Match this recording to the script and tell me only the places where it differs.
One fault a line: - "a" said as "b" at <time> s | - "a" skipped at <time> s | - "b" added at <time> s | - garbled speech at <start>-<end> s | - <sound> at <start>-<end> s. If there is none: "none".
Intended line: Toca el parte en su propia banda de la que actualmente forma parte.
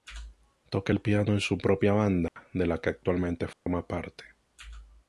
- "parte" said as "piano" at 1.0 s
- dropout at 2.3-2.4 s
- dropout at 3.5-3.7 s